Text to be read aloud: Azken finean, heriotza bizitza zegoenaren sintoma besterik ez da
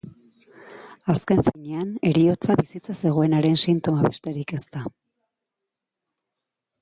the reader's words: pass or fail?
pass